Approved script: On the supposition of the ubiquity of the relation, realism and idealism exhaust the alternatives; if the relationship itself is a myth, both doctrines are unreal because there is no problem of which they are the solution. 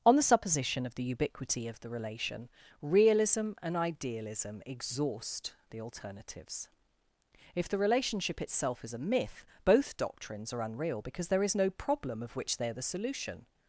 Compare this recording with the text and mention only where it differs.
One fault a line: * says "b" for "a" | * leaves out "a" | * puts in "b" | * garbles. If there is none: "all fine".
all fine